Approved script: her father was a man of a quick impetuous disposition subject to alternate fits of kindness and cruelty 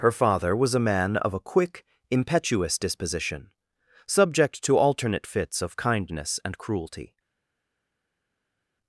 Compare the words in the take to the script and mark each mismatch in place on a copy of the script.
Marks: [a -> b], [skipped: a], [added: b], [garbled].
her father was a man of a quick impetuous disposition subject to alternate fits of kindness and cruelty